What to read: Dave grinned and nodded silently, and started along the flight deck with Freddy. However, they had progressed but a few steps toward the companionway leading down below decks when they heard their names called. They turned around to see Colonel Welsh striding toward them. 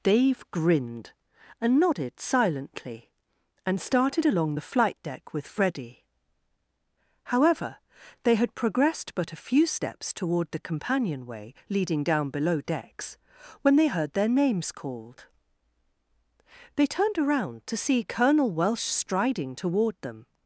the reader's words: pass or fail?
pass